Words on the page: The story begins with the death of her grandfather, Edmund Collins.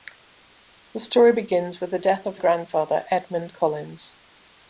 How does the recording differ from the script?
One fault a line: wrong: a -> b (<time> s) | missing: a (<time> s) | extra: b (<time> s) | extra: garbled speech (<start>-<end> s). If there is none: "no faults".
missing: her (2.4 s)